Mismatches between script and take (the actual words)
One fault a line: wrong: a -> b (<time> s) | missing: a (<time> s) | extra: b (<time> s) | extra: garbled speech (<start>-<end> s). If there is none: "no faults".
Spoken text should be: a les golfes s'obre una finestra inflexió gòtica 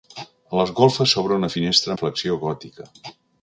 no faults